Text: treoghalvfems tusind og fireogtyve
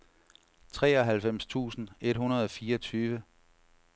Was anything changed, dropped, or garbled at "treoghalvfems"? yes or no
no